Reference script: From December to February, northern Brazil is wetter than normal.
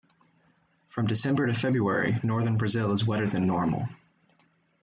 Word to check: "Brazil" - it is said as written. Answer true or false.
true